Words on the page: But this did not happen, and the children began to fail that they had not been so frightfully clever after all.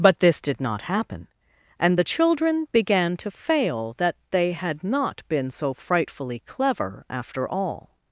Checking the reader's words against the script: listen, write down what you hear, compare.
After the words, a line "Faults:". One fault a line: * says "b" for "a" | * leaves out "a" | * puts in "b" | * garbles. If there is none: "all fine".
But this did not happen, and the children began to fail that they had not been so frightfully clever after all.
Faults:
all fine